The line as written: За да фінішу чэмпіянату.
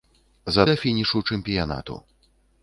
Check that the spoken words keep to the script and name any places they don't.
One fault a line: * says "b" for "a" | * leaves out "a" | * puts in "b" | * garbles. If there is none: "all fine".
all fine